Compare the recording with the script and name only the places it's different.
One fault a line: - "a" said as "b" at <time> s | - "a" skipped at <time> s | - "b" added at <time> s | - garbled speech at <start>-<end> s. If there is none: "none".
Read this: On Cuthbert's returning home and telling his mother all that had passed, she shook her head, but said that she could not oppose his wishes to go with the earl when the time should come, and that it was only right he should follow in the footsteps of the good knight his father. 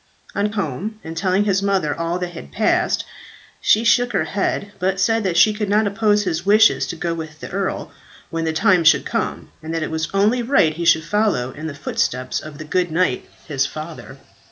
- "Cuthbert's returning" skipped at 0.5 s